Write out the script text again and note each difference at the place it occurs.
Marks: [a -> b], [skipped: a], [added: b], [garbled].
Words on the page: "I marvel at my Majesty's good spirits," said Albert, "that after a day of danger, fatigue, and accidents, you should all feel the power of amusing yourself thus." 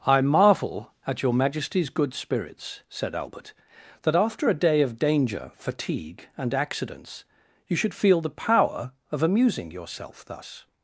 "I marvel at [my -> your] Majesty's good spirits," said Albert, "that after a day of danger, fatigue, and accidents, you should [skipped: all] feel the power of amusing yourself thus."